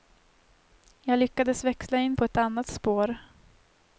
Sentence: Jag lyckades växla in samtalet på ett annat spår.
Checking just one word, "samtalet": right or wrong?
wrong